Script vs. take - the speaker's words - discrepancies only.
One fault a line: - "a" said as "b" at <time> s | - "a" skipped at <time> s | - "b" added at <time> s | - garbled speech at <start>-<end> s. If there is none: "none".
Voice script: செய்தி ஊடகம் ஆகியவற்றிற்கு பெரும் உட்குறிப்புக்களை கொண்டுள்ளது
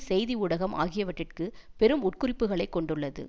none